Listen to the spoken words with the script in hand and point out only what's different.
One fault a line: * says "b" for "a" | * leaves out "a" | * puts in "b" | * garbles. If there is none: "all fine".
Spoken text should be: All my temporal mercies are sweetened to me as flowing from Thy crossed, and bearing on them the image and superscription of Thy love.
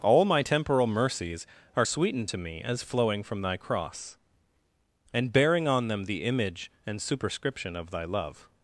* says "cross" for "crossed"